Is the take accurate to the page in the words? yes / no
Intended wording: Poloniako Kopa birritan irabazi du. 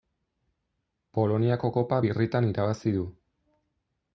yes